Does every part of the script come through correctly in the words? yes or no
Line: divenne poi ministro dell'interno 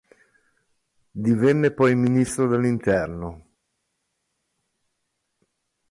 yes